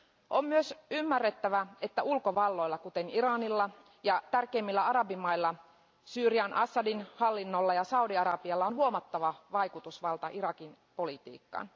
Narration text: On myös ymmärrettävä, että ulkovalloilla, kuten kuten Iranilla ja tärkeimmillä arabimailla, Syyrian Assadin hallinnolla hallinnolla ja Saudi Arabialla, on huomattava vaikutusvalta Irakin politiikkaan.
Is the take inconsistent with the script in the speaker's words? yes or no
yes